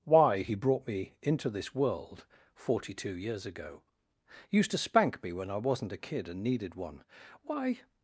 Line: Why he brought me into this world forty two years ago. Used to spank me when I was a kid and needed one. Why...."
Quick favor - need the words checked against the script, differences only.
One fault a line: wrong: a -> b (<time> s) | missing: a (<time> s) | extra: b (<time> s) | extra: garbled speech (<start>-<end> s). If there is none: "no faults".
wrong: was -> wasn't (5.6 s)